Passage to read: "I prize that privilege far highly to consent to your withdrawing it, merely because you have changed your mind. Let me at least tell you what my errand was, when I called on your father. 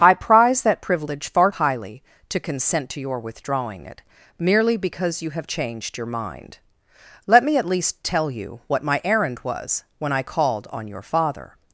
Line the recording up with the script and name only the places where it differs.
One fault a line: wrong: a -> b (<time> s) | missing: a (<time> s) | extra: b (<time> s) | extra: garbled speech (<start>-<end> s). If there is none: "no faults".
no faults